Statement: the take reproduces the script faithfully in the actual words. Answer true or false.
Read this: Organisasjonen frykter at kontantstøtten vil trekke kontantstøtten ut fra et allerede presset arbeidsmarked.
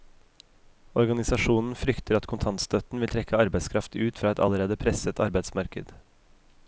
false